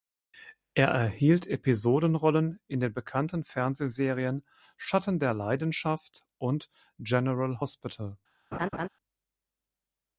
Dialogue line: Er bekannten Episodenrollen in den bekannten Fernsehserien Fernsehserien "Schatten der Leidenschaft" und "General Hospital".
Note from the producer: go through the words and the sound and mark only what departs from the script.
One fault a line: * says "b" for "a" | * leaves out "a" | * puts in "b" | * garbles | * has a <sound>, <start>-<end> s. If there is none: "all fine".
* says "erhielt" for "bekannten"
* leaves out "Fernsehserien"
* has a laugh, 8.5-8.9 s